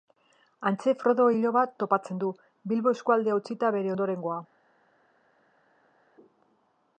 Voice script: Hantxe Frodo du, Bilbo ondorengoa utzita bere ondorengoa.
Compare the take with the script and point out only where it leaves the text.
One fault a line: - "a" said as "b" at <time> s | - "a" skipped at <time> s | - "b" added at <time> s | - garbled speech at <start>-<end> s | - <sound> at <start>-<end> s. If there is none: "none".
- "iloba topatzen" added at 1.4 s
- "ondorengoa" said as "eskualdea" at 3.0 s